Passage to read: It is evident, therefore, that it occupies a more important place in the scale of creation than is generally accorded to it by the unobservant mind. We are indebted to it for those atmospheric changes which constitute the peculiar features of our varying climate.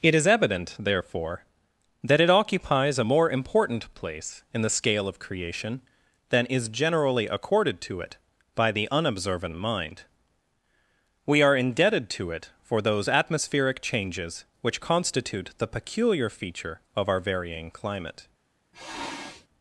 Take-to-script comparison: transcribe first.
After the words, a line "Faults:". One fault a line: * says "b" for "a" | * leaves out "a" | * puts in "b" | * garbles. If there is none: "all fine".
It is evident, therefore, that it occupies a more important place in the scale of creation than is generally accorded to it by the unobservant mind. We are indebted to it for those atmospheric changes which constitute the peculiar feature of our varying climate.
Faults:
* says "feature" for "features"